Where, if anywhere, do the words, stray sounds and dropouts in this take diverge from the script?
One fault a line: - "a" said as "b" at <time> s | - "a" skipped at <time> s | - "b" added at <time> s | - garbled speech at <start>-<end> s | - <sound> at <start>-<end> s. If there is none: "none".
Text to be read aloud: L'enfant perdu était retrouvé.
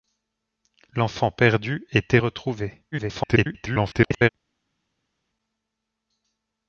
- garbled speech at 2.9-4.3 s